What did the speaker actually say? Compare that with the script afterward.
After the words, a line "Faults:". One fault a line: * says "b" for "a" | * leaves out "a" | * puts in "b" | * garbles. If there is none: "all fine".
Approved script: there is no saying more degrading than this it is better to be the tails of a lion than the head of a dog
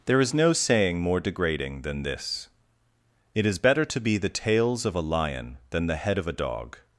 there is no saying more degrading than this it is better to be the tails of a lion than the head of a dog
Faults:
all fine